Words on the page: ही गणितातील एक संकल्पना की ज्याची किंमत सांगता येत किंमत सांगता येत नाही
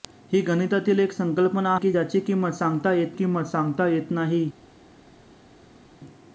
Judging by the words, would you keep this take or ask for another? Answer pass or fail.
pass